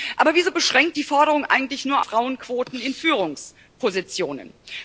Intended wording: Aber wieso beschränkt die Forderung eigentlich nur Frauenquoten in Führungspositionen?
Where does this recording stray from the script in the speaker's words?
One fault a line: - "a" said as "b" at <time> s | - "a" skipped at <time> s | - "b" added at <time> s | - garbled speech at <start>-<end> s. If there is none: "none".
none